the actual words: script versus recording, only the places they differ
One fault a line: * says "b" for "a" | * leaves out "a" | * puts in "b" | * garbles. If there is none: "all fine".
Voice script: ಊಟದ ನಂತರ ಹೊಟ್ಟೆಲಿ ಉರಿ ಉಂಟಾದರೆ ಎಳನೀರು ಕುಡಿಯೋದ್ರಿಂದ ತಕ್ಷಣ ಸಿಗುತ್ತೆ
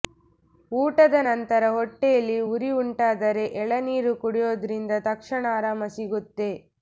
* puts in "ಆರಾಮ"